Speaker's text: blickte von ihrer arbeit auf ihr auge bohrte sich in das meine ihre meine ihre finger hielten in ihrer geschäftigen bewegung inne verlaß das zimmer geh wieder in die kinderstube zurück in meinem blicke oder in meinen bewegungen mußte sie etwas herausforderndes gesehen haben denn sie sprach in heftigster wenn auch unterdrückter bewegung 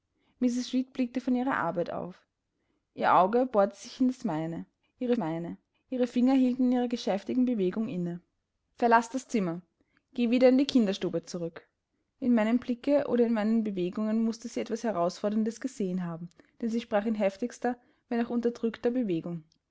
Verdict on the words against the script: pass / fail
pass